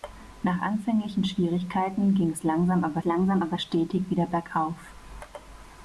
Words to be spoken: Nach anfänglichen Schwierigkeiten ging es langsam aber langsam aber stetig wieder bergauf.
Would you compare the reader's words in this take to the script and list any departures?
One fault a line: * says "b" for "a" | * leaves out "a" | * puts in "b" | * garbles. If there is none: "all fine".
all fine